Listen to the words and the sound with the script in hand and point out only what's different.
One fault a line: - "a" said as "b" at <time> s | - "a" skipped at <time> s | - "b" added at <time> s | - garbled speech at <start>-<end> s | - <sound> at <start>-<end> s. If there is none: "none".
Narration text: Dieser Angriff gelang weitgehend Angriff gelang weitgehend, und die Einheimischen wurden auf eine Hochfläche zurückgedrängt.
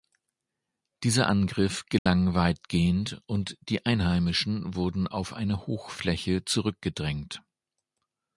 - dropout at 2.0-2.1 s
- "Angriff gelang weitgehend" skipped at 3.2 s